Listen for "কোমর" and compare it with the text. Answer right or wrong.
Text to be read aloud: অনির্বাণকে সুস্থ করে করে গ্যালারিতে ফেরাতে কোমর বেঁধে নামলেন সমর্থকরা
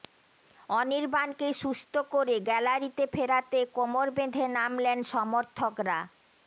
right